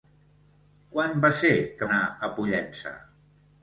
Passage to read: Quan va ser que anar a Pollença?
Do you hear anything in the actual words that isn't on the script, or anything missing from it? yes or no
no